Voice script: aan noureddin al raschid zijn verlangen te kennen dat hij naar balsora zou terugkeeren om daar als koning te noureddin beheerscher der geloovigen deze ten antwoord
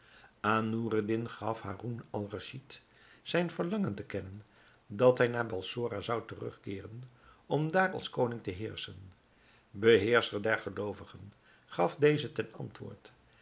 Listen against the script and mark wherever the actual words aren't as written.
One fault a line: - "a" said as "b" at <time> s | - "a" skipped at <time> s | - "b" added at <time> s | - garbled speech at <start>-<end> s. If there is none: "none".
- "gaf haroun" added at 1.3 s
- "noureddin" said as "heerschen" at 8.5 s
- "gaf" added at 11.6 s